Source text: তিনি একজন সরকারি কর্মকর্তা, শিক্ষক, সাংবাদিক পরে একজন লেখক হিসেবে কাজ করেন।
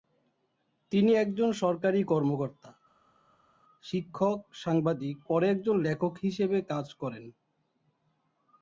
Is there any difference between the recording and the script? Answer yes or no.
no